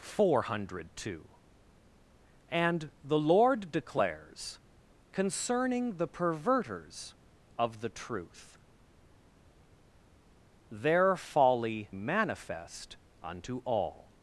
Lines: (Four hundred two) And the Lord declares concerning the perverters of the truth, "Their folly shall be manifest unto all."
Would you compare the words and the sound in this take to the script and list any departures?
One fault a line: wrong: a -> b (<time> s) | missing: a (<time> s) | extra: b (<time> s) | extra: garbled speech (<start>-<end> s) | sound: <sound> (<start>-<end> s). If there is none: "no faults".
missing: shall be (11.9 s)